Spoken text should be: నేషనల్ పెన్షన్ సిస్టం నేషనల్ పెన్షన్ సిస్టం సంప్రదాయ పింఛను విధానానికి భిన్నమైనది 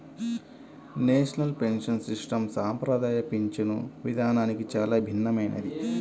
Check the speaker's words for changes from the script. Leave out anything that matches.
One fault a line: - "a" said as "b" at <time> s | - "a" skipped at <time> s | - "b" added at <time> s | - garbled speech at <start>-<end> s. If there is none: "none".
- "నేషనల్ పెన్షన్ సిస్టం" skipped at 2.4 s
- "చాలా" added at 4.8 s